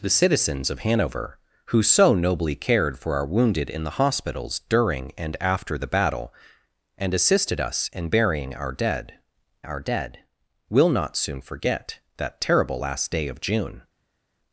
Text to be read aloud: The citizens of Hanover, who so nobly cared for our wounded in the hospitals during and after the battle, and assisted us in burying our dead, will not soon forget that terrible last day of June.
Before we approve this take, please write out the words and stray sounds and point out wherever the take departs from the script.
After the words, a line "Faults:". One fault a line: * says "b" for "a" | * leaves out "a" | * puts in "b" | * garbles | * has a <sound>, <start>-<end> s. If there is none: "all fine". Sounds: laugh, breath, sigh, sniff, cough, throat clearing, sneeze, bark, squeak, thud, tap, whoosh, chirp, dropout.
The citizens of Hanover, who so nobly cared for our wounded in the hospitals during and after the battle, and assisted us in burying our dead our dead, will not soon forget that terrible last day of June.
Faults:
* puts in "our dead"